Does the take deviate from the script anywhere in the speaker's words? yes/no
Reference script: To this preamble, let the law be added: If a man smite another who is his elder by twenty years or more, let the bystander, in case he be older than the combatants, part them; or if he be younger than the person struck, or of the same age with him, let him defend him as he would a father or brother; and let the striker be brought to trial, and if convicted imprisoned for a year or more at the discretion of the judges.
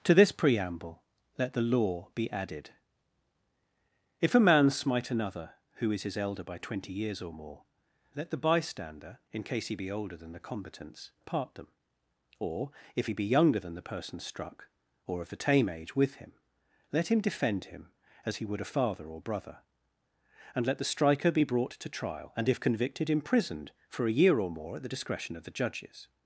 yes